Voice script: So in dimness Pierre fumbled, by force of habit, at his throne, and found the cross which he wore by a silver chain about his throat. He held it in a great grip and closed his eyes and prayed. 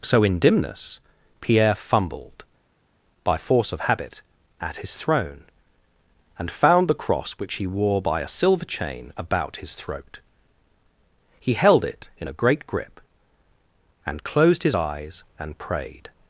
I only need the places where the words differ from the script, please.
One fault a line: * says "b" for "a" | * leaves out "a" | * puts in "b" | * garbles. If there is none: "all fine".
all fine